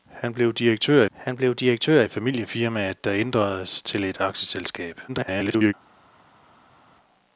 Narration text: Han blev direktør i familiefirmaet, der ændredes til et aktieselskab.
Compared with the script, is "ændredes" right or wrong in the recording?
right